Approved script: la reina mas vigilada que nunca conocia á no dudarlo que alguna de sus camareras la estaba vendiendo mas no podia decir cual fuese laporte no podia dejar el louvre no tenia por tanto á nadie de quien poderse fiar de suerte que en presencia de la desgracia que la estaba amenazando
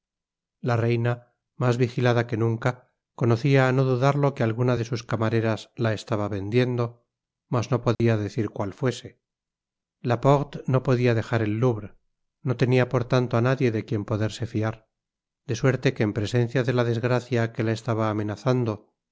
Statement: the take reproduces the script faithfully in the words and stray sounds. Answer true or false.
false